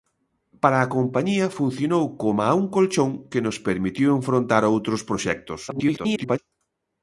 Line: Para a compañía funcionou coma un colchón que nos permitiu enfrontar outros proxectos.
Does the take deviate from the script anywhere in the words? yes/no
yes